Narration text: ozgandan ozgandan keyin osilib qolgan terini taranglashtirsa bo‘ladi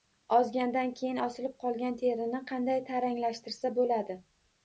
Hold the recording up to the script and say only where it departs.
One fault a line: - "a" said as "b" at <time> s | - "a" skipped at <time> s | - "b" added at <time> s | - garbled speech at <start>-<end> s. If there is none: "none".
- "ozgandan" skipped at 0.9 s
- "qanday" added at 2.5 s